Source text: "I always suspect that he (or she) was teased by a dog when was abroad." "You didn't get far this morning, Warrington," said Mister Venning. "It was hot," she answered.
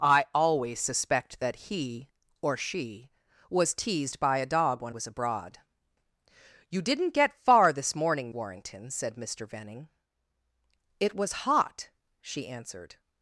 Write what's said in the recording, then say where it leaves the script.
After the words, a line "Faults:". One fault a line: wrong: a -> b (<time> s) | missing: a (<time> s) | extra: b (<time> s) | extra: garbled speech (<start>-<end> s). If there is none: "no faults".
"I always suspect that he (or she) was teased by a dog when was abroad." "You didn't get far this morning, Warrington," said Mister Venning. "It was hot," she answered.
Faults:
no faults